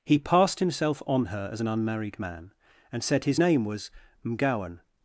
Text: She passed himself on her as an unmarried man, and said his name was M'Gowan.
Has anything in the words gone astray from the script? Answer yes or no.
yes